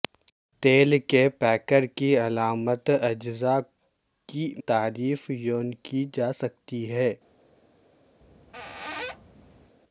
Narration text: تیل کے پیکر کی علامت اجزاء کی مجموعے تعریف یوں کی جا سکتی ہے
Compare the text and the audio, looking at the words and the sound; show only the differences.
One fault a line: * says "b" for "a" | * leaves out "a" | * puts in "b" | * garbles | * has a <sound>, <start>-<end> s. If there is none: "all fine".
* leaves out "مجموعے"
* has a squeak, 8.2-9.8 s